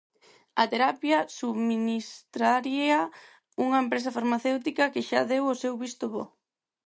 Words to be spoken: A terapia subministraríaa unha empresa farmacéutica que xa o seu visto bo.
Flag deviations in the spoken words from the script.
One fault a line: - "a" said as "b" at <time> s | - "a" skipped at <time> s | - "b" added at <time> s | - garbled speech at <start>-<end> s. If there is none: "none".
- "deu" added at 5.3 s